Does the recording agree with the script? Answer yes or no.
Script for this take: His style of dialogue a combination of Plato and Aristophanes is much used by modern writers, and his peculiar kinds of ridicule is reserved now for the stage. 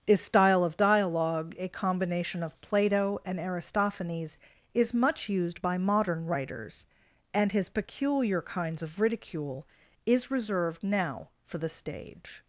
yes